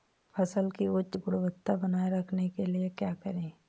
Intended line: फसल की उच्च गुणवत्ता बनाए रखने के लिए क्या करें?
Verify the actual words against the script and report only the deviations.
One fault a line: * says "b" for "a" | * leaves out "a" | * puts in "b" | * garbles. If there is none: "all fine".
all fine